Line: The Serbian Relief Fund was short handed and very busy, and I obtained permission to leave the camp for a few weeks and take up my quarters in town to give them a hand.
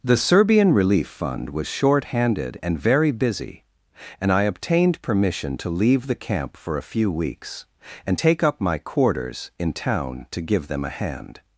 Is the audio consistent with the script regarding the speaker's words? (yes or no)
yes